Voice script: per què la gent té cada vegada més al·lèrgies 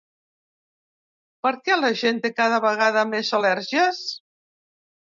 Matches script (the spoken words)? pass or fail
pass